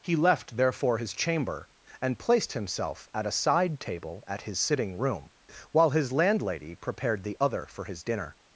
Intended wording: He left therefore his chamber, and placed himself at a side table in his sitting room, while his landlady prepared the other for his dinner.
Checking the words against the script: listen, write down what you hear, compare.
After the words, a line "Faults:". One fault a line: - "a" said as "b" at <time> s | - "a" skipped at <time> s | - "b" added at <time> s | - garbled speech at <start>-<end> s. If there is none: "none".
He left therefore his chamber, and placed himself at a side table at his sitting room, while his landlady prepared the other for his dinner.
Faults:
- "in" said as "at" at 4.2 s